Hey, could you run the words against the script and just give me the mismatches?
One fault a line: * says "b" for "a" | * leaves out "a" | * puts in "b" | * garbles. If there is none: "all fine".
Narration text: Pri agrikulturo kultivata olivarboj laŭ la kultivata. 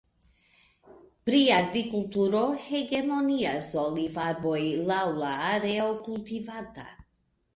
* says "hegemonias" for "kultivata"
* puts in "areo"